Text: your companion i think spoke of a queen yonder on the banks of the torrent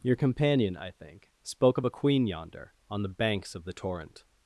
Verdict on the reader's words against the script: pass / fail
pass